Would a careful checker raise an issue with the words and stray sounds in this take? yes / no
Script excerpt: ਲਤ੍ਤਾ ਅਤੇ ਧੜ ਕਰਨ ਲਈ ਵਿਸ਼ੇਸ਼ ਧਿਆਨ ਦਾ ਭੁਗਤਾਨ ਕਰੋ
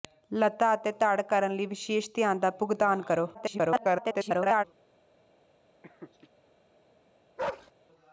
yes